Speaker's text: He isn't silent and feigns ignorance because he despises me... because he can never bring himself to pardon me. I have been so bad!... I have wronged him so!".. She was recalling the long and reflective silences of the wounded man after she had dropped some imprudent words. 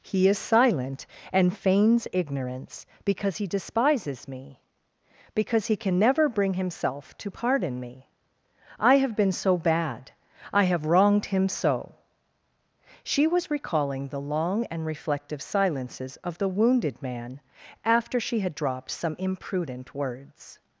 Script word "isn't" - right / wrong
wrong